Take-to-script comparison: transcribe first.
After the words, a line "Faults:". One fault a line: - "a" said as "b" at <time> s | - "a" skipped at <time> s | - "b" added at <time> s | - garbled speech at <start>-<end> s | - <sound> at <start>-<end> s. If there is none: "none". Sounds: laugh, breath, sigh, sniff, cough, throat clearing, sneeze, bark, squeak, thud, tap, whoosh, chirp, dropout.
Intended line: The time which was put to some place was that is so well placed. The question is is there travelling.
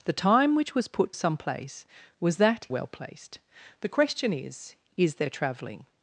The time which was put some place was that well placed. The question is is there travelling.
Faults:
- "to" skipped at 1.1 s
- "is so" skipped at 2.7 s